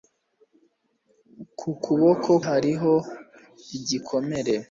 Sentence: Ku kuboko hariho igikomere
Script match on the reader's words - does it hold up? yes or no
yes